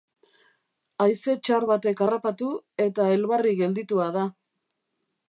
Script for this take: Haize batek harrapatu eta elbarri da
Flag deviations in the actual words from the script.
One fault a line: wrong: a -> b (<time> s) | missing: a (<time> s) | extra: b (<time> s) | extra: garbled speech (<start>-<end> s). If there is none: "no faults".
extra: txar (1.5 s)
extra: gelditua (3.6 s)